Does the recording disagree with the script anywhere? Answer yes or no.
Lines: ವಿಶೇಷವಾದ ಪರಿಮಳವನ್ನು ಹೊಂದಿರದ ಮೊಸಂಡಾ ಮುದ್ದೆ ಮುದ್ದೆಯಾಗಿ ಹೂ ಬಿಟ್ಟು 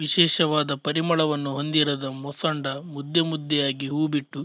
no